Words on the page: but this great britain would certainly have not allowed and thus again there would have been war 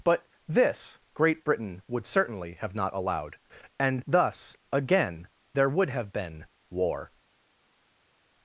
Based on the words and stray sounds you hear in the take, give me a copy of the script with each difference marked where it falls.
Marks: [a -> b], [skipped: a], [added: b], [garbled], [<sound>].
but this great britain would certainly have not allowed and thus again there would have been war